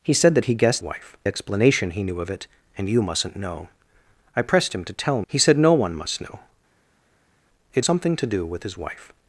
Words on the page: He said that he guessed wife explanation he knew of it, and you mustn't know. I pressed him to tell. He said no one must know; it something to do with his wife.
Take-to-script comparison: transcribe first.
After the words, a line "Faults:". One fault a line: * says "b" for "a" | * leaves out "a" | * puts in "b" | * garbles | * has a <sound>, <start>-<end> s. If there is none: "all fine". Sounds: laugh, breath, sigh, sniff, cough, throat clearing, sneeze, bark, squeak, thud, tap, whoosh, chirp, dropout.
He said that he guessed wife explanation he knew of it, and you mustn't know. I pressed him to tell. He said no one must know; it something to do with his wife.
Faults:
all fine